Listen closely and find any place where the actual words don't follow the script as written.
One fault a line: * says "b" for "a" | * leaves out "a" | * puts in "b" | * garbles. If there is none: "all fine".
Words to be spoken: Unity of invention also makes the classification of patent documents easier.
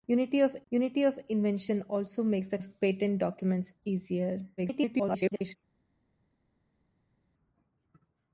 * puts in "unity of"
* leaves out "classification"
* garbles